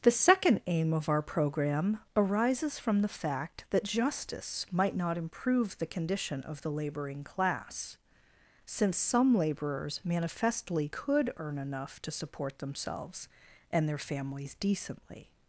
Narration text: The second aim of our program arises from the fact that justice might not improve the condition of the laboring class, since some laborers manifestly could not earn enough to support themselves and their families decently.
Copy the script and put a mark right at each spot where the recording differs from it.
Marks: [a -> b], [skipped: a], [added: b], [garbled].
The second aim of our program arises from the fact that justice might not improve the condition of the laboring class, since some laborers manifestly could [skipped: not] earn enough to support themselves and their families decently.